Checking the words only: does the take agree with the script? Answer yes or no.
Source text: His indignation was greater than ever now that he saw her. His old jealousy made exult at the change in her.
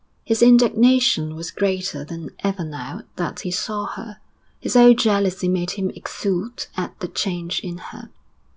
no